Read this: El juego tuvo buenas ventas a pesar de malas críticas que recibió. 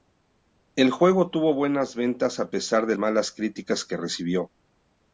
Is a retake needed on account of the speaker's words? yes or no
no